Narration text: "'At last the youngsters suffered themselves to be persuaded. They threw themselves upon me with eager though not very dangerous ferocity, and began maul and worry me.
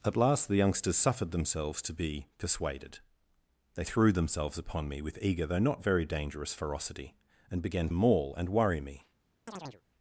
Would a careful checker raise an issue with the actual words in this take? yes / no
no